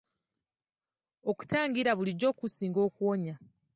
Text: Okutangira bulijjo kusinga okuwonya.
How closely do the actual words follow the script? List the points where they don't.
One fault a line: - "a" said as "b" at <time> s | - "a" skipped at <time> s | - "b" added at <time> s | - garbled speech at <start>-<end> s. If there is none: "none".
none